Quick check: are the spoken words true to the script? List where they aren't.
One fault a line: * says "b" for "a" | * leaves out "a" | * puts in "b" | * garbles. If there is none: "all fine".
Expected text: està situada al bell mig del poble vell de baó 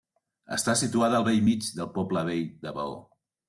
all fine